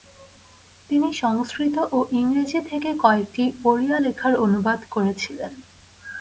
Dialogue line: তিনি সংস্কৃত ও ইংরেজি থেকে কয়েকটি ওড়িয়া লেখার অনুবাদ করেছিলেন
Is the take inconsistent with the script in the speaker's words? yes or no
no